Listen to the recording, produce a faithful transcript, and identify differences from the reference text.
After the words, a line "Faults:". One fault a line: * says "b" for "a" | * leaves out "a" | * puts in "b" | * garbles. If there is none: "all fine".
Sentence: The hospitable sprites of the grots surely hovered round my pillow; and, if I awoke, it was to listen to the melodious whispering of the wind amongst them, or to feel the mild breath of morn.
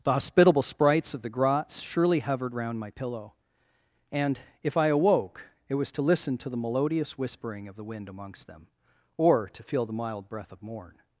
The hospitable sprites of the grots surely hovered round my pillow; and, if I awoke, it was to listen to the melodious whispering of the wind amongst them, or to feel the mild breath of morn.
Faults:
all fine